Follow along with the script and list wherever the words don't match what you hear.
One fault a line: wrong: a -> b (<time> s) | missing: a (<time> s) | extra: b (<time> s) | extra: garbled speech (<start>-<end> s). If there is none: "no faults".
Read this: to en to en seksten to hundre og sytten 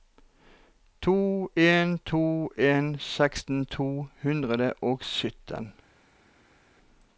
no faults